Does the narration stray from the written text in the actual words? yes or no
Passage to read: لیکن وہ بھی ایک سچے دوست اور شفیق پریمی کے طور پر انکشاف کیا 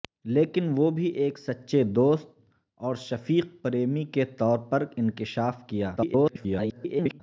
yes